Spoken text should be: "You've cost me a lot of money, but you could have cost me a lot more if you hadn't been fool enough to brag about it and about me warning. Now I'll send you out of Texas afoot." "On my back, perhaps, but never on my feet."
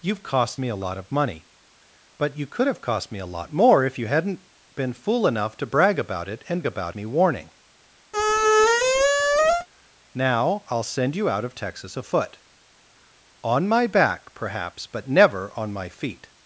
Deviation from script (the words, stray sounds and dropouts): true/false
true